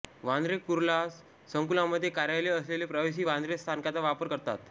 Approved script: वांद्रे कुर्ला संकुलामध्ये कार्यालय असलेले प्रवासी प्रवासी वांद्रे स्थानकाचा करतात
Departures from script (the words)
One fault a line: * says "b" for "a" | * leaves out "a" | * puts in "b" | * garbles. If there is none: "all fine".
* leaves out "प्रवासी"
* puts in "वापर"